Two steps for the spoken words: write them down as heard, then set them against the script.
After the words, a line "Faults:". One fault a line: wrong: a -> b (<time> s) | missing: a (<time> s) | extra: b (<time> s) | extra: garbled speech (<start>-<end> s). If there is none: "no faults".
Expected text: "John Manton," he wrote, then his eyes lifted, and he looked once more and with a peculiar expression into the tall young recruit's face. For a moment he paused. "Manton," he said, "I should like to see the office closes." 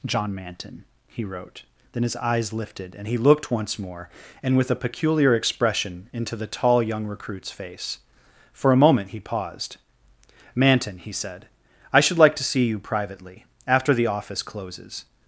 "John Manton," he wrote, then his eyes lifted, and he looked once more and with a peculiar expression into the tall young recruit's face. For a moment he paused. "Manton," he said, "I should like to see you privately after the office closes."
Faults:
extra: you privately after (12.6 s)